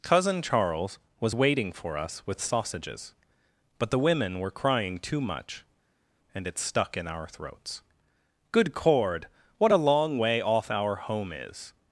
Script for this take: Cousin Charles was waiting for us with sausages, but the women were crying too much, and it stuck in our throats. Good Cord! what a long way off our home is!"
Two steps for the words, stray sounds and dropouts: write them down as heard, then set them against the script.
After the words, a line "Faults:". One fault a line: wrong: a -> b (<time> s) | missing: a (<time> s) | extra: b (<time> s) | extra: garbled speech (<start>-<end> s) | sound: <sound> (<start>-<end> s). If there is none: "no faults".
Cousin Charles was waiting for us with sausages, but the women were crying too much, and it stuck in our throats. Good Cord! what a long way off our home is!"
Faults:
no faults